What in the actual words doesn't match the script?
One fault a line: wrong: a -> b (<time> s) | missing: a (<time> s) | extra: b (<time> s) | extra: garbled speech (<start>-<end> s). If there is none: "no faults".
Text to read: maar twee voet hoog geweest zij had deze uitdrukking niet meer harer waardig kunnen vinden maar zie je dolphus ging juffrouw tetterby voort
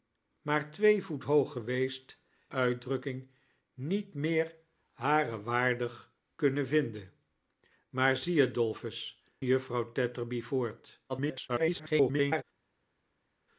missing: zij had deze (2.2 s)
missing: ging (9.2 s)
extra: garbled speech (11.1-12.4 s)